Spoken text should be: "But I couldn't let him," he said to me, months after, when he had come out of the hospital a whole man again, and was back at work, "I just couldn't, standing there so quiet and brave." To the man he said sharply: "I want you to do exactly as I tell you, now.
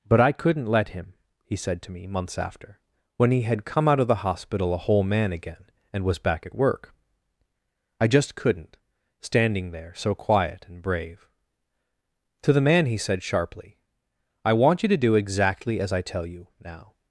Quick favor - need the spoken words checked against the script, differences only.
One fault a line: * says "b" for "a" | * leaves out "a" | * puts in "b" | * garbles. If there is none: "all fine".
all fine